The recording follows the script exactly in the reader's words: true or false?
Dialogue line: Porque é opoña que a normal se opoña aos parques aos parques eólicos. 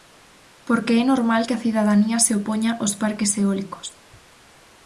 false